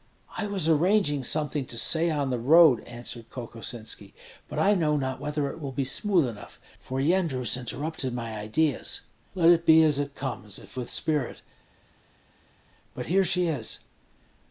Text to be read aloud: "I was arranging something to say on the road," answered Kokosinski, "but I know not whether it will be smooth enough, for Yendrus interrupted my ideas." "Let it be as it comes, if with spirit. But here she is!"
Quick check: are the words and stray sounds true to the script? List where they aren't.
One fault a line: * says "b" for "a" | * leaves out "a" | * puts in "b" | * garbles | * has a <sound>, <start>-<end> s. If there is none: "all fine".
all fine